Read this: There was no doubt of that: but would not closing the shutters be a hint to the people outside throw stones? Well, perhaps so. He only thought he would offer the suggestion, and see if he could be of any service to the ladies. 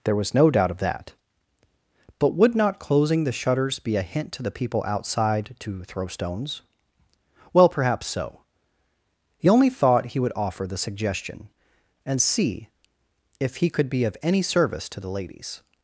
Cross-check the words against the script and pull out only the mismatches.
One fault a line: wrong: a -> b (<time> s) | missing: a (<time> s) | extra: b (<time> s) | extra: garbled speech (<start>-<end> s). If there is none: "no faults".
extra: to (5.6 s)